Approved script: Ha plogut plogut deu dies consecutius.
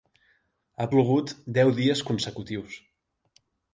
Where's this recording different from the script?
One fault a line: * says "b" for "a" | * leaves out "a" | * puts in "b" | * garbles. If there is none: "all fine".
* leaves out "plogut"